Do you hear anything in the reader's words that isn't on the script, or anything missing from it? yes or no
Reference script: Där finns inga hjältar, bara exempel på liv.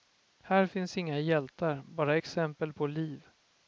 yes